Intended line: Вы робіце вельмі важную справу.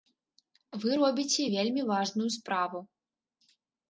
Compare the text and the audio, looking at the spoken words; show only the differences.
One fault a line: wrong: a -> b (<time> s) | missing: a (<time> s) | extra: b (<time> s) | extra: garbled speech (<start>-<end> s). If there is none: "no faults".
no faults